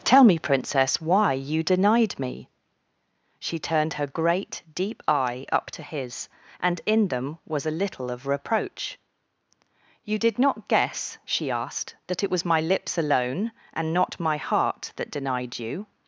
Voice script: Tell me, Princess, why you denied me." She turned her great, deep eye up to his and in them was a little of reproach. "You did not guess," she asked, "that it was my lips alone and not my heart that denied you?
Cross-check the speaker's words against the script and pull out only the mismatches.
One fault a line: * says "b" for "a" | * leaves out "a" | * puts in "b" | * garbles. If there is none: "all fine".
all fine